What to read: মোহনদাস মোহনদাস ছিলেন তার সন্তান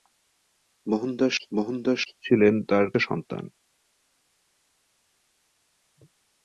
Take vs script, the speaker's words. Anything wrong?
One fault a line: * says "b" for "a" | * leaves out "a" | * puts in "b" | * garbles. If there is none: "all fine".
all fine